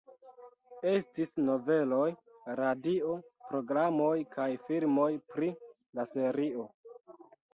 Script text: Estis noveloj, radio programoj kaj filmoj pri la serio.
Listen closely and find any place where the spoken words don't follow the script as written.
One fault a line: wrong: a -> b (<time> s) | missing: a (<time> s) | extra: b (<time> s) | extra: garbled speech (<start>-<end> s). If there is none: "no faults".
no faults